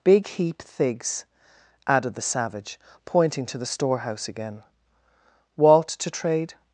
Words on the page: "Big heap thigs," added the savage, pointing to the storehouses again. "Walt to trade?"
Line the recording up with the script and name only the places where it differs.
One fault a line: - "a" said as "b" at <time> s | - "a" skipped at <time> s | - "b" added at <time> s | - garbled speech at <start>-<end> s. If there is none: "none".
- "storehouses" said as "storehouse" at 3.7 s